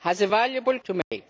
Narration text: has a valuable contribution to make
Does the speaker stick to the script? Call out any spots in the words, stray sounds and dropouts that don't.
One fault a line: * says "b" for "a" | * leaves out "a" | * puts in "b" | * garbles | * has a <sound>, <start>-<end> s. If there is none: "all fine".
* leaves out "contribution"
* has a dropout, 1.0-1.1 s